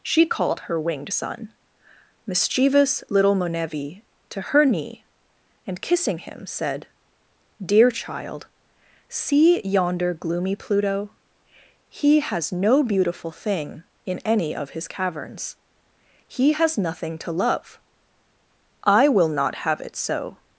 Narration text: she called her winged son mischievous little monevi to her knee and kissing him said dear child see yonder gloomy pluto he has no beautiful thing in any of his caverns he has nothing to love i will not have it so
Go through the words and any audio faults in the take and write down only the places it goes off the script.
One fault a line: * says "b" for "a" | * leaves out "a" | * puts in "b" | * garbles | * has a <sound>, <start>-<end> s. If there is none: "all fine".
all fine